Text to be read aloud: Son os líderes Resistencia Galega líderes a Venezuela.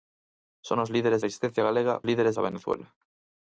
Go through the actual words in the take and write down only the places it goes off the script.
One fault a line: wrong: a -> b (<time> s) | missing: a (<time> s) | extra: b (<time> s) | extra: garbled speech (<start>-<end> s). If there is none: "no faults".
no faults